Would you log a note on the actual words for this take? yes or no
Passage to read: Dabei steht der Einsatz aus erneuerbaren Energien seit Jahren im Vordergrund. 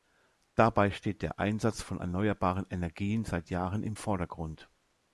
yes